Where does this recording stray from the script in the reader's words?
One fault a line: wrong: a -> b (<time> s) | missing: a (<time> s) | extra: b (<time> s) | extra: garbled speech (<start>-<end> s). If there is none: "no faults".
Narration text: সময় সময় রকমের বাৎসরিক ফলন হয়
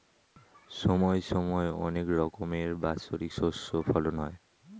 extra: অনেক (1.8 s)
extra: শস্য (3.3 s)